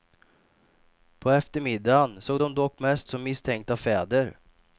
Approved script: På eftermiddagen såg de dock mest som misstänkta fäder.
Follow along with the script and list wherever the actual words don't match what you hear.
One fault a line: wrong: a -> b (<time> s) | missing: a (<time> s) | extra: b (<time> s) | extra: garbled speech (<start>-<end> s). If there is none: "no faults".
no faults